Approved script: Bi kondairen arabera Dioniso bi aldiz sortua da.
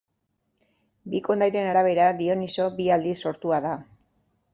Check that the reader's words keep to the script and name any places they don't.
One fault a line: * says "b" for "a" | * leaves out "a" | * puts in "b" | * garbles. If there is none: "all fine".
all fine